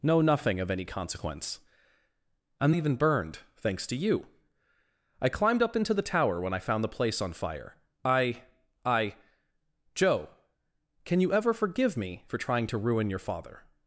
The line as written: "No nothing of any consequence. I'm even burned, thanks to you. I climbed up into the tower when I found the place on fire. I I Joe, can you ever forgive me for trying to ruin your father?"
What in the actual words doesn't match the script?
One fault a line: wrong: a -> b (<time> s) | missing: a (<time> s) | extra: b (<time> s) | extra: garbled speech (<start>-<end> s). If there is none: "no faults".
no faults